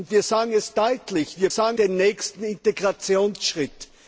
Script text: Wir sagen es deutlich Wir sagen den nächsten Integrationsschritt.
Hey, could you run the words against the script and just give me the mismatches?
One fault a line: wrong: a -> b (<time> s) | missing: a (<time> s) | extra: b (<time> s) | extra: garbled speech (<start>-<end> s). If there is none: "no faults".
no faults